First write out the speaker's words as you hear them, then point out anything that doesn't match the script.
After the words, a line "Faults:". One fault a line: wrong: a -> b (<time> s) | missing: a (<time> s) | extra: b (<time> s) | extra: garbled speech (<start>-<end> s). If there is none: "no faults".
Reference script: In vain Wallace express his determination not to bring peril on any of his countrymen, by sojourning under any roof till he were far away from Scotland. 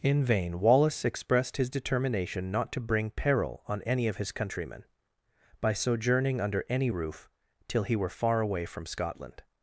In vain Wallace expressed his determination not to bring peril on any of his countrymen, by sojourning under any roof till he were far away from Scotland.
Faults:
wrong: express -> expressed (1.1 s)